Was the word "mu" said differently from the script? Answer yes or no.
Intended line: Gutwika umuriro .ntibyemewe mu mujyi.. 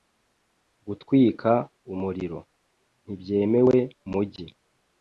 yes